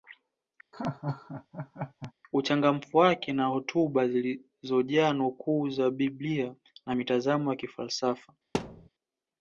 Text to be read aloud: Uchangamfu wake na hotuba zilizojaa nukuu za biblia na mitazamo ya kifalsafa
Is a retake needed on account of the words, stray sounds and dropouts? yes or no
yes